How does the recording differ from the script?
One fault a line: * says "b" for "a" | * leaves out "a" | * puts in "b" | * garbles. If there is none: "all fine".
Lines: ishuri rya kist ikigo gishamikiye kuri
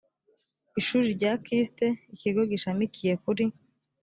all fine